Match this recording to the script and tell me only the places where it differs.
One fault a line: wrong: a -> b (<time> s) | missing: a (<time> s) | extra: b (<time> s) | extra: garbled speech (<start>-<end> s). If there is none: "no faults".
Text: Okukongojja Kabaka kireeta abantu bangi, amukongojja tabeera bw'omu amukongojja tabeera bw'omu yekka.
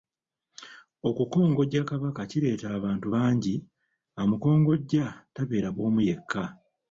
missing: amukongojja tabeera bw'omu (6.0 s)